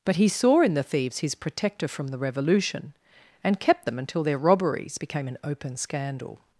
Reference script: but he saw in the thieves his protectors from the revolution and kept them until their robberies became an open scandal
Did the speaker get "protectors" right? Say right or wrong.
wrong